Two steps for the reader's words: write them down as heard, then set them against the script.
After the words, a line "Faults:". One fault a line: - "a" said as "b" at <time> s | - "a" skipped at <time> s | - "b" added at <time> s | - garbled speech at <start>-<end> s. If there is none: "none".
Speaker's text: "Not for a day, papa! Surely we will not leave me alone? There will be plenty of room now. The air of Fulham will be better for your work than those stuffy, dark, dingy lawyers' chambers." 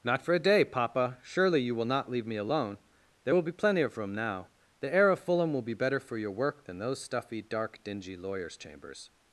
"Not for a day, papa! Surely you will not leave me alone? There will be plenty of room now. The air of Fulham will be better for your work than those stuffy, dark, dingy lawyers' chambers."
Faults:
- "we" said as "you" at 1.6 s